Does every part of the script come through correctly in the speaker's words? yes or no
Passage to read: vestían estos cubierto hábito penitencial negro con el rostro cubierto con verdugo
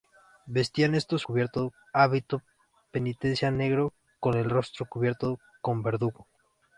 yes